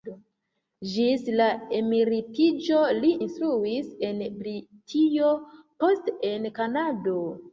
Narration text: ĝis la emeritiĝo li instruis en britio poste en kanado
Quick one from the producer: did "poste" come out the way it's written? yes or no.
yes